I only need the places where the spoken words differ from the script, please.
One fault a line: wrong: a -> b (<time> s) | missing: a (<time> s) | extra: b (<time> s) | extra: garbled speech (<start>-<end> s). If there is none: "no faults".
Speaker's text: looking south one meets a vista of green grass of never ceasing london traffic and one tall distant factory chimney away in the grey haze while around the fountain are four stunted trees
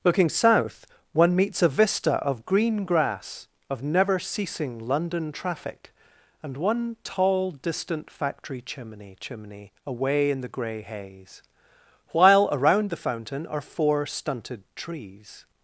extra: chimney (9.2 s)